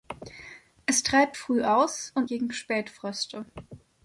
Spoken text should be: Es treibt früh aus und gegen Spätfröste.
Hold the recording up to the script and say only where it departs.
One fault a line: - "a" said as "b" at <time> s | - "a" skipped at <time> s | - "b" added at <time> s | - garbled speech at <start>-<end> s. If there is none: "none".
none